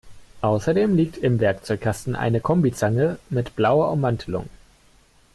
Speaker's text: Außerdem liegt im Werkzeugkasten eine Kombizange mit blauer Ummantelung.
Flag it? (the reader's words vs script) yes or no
no